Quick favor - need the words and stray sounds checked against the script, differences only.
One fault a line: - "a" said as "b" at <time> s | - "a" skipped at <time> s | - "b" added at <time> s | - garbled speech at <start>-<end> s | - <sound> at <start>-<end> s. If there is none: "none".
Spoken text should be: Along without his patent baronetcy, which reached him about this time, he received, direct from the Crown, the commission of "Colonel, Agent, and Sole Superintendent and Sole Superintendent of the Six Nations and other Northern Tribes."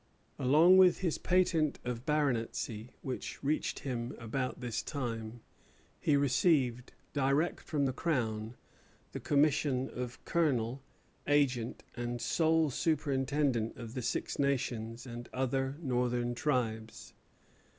- "without" said as "with" at 0.8 s
- "of" added at 1.8 s
- "and Sole Superintendent" skipped at 13.7 s